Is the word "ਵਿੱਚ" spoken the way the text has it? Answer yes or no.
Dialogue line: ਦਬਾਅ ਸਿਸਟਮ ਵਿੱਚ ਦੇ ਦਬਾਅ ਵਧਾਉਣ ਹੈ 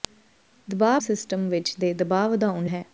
yes